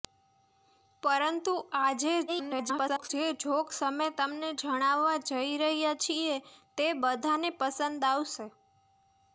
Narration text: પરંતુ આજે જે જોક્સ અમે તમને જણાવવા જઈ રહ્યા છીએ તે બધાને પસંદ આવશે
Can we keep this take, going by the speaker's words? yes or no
no